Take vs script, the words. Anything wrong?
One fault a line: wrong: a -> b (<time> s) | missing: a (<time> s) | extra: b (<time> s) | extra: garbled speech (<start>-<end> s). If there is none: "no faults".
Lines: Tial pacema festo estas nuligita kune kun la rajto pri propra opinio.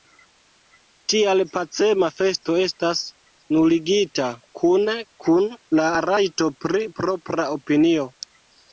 no faults